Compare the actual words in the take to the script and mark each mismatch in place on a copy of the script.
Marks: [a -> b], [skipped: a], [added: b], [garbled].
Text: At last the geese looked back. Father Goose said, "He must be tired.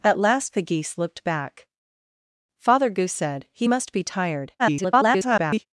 At last the geese looked back. Father Goose said, "He must be tired. [garbled]